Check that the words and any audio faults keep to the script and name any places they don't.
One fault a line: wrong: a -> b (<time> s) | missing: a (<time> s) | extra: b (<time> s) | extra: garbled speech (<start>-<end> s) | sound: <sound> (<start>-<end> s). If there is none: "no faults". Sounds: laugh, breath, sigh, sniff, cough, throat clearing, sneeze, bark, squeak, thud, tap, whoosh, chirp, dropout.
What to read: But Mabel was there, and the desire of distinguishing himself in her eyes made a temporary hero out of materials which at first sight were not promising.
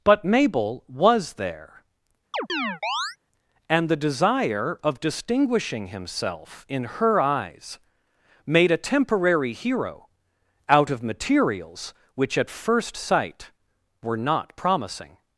sound: chirp (2.3-3.2 s)